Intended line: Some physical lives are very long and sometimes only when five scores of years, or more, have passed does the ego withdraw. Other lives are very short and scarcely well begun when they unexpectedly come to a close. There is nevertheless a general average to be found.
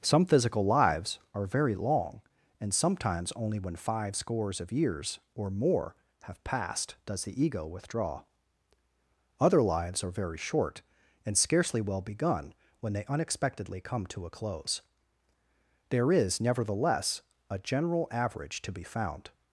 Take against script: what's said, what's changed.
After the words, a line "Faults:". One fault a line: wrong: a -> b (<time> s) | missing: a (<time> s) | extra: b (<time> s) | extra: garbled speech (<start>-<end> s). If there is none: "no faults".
Some physical lives are very long and sometimes only when five scores of years, or more, have passed does the ego withdraw. Other lives are very short and scarcely well begun when they unexpectedly come to a close. There is nevertheless a general average to be found.
Faults:
no faults